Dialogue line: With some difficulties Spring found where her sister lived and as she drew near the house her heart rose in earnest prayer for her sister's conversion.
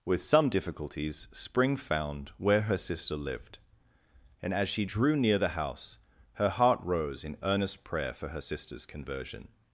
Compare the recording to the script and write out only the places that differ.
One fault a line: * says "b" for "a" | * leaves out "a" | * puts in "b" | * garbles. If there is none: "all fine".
all fine